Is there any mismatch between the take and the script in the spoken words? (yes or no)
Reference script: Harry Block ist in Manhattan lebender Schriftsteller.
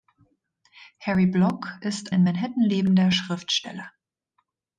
no